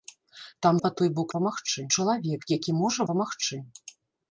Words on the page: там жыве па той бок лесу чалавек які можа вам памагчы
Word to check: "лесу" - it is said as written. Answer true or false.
false